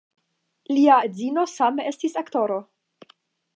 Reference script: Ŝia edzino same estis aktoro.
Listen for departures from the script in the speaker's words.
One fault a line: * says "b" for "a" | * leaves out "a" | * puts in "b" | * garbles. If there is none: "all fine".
* says "Lia" for "Ŝia"